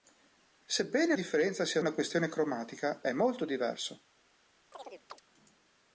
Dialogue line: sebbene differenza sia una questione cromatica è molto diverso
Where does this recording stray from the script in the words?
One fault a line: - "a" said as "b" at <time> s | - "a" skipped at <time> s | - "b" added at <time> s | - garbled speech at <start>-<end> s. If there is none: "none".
none